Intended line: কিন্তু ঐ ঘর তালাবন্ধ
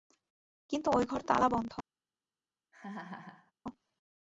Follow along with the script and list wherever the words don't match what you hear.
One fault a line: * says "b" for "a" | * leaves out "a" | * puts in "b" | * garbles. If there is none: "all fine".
all fine